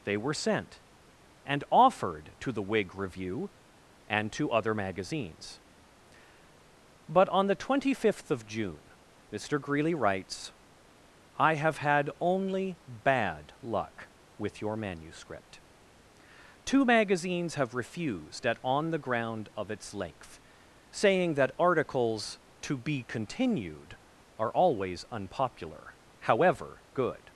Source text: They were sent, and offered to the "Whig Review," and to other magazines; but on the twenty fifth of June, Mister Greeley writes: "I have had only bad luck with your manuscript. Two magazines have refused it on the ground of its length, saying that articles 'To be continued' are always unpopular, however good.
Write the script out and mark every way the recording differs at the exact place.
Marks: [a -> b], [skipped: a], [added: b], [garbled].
They were sent, and offered to the "Whig Review," and to other magazines; but on the twenty fifth of June, Mister Greeley writes: "I have had only bad luck with your manuscript. Two magazines have refused [it -> at] on the ground of its length, saying that articles 'To be continued' are always unpopular, however good.